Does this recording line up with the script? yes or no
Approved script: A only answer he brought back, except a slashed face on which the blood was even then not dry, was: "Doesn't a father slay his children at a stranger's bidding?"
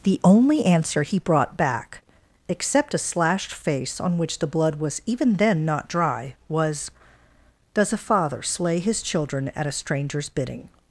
no